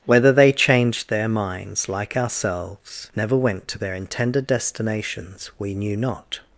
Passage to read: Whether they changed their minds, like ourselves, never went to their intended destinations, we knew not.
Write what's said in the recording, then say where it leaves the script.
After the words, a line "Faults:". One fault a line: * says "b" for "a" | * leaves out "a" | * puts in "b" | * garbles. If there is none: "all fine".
Whether they changed their minds, like ourselves, never went to their intended destinations, we knew not.
Faults:
all fine